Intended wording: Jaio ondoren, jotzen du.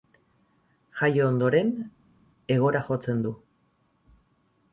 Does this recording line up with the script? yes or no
no